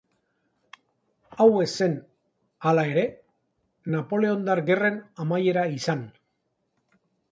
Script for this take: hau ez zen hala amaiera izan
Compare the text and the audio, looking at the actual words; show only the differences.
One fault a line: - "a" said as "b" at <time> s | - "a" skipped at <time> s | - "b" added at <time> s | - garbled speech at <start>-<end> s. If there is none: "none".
- "ere napoleondar gerren" added at 2.9 s